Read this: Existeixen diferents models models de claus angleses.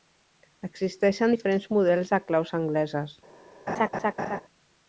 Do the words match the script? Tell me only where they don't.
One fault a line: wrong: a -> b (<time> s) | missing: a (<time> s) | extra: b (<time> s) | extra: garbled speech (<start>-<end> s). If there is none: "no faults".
missing: models (2.1 s)